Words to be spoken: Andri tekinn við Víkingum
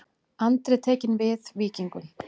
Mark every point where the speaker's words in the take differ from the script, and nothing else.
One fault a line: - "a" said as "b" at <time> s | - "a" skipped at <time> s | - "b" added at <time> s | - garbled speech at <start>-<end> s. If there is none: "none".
none